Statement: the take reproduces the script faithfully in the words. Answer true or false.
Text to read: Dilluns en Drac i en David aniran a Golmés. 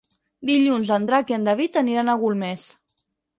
true